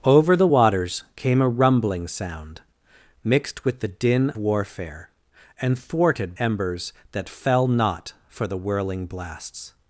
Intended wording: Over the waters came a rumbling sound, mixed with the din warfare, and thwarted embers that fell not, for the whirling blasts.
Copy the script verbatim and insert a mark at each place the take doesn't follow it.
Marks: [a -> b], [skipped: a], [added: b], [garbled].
Over the waters came a rumbling sound, mixed with the din warfare, and thwarted embers that fell not, for the whirling blasts.